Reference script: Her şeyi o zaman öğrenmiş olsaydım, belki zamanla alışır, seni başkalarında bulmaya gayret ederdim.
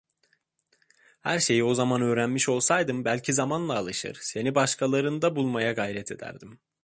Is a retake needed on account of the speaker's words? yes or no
no